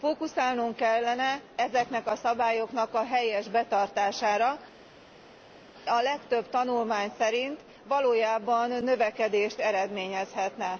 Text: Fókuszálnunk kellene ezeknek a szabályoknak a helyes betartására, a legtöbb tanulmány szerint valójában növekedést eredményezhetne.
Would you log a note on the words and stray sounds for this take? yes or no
no